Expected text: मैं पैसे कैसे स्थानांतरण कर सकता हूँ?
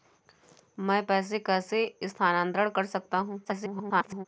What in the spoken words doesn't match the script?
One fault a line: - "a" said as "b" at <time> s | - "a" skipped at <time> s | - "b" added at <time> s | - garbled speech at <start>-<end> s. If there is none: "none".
- garbled speech at 3.4-4.3 s